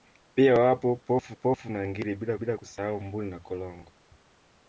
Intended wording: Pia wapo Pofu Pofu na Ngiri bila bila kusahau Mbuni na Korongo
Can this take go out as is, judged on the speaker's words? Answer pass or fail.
pass